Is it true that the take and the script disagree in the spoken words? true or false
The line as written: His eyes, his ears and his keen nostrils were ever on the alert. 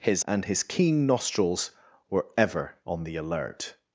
true